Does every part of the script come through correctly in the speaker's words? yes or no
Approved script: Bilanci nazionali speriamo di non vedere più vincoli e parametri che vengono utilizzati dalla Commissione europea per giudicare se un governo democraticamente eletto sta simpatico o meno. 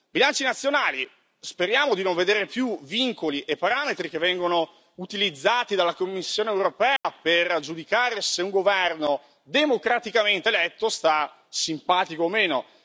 yes